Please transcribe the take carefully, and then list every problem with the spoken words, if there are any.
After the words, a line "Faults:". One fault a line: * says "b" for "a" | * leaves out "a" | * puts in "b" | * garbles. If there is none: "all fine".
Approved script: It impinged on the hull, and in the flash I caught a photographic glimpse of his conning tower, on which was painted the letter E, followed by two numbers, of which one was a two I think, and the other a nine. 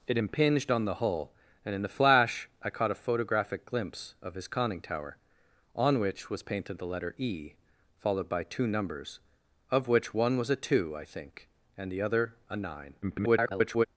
It impinged on the hull, and in the flash I caught a photographic glimpse of his conning tower, on which was painted the letter E, followed by two numbers, of which one was a two I think, and the other a nine. [garbled]
Faults:
* garbles